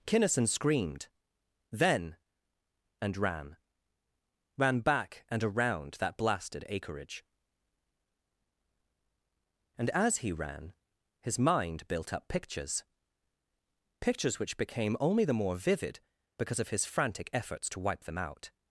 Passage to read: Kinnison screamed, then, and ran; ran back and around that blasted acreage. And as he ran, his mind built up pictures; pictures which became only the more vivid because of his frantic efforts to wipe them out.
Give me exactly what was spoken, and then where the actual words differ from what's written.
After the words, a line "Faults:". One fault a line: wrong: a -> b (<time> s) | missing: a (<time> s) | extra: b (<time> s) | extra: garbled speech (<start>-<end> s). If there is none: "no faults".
Kinnison screamed, then, and ran; ran back and around that blasted acreage. And as he ran, his mind built up pictures; pictures which became only the more vivid because of his frantic efforts to wipe them out.
Faults:
no faults